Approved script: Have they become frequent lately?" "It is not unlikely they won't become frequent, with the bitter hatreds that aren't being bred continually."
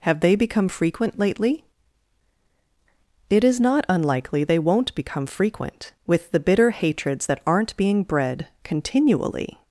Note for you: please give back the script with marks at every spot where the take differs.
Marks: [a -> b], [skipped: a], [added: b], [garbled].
Have they become frequent lately?" "It is not unlikely they won't become frequent, with the bitter hatreds that aren't being bred continually."